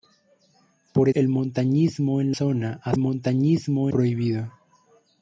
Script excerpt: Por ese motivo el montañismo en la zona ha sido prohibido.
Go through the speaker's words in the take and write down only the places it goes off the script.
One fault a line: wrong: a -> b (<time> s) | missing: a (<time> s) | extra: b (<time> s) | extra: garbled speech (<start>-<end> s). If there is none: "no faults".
missing: ese motivo (1.1 s)
missing: la (2.3 s)
wrong: sido -> montañismo (3.0 s)